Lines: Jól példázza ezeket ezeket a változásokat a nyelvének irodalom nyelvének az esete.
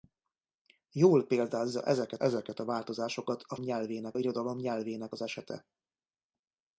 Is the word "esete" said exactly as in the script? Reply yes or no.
yes